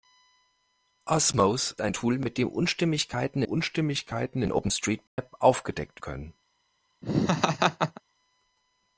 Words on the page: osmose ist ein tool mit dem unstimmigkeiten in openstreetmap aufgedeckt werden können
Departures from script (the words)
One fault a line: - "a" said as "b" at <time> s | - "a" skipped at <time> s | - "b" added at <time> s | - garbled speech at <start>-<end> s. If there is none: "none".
- "ist" skipped at 1.8 s
- "unstimmigkeiten" added at 3.4 s
- "werden" skipped at 6.0 s